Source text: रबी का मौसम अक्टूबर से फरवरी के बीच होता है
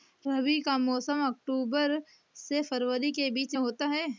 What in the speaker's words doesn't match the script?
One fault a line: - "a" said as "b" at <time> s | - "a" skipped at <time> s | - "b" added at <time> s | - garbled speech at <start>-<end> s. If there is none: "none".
none